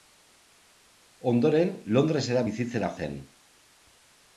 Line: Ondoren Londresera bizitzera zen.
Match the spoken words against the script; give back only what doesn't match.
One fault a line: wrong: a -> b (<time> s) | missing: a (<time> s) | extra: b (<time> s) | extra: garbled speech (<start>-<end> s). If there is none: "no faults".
no faults